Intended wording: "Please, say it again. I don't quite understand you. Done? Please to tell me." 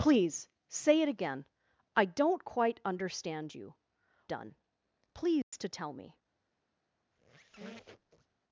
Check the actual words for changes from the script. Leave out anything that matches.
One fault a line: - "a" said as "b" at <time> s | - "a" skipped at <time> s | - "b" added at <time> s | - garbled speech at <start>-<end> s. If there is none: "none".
none